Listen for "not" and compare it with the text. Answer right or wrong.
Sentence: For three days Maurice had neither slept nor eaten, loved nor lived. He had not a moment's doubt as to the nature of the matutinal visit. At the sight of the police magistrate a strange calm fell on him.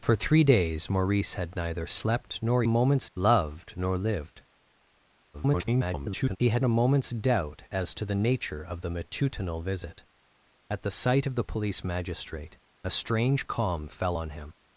wrong